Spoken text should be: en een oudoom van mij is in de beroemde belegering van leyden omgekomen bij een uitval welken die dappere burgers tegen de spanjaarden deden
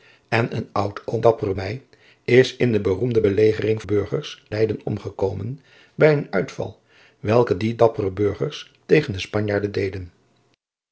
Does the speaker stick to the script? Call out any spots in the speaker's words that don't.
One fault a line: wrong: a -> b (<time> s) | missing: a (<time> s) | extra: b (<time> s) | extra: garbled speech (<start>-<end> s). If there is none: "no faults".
wrong: van -> dappere (1.2 s)
wrong: van -> burgers (3.8 s)